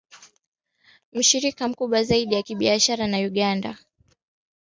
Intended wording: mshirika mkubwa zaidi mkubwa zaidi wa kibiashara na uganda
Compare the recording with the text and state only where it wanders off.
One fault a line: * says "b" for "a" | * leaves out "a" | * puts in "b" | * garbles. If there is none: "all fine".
* leaves out "mkubwa zaidi"